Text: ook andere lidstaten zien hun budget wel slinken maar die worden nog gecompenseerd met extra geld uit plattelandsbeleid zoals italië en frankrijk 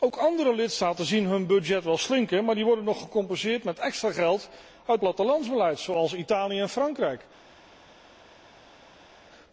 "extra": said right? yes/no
yes